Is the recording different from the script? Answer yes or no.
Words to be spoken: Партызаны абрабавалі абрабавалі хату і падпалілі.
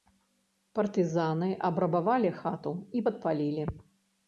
yes